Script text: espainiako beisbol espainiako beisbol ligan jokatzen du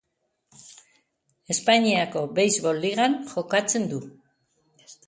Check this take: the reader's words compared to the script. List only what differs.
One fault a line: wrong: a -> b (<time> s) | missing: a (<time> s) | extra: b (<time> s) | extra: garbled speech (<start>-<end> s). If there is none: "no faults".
missing: espainiako beisbol (2.8 s)